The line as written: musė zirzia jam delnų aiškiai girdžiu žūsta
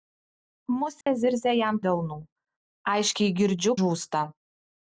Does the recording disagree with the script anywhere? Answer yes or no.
no